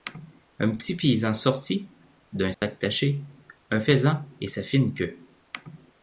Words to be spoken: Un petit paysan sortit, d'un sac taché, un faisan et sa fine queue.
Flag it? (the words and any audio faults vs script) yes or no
yes